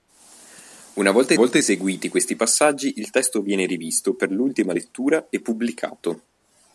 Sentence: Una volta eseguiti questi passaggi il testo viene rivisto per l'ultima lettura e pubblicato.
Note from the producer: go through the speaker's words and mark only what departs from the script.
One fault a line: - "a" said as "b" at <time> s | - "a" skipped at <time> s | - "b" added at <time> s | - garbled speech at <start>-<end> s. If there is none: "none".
- "volta" added at 1.3 s